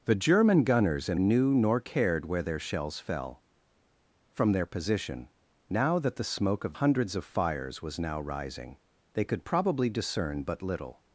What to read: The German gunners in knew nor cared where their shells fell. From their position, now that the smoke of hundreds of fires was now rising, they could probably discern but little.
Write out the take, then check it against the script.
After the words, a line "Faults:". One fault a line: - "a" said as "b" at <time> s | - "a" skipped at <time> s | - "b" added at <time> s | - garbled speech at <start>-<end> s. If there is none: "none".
The German gunners in knew nor cared where their shells fell. From their position, now that the smoke of hundreds of fires was now rising, they could probably discern but little.
Faults:
none